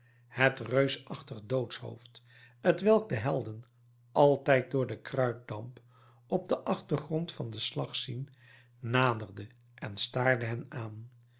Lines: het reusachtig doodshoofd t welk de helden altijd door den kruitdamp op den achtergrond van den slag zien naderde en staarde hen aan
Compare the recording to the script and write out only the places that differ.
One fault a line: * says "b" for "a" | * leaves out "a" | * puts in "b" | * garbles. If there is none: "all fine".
all fine